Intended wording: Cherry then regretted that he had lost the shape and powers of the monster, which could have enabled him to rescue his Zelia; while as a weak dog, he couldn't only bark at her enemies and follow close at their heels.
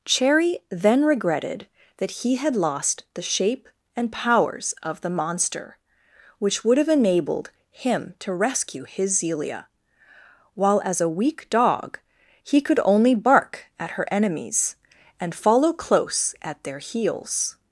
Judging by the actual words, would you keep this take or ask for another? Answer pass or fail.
fail